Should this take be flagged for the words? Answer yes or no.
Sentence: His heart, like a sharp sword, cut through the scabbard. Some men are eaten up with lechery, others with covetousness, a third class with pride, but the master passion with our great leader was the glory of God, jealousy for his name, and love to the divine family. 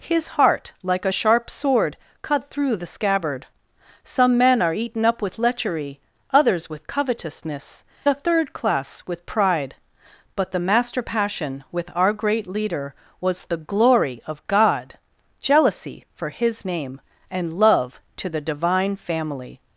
no